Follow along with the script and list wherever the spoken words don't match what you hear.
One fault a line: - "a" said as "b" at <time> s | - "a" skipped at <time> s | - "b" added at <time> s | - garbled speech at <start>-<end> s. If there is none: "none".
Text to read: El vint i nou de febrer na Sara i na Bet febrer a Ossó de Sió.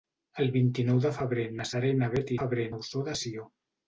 none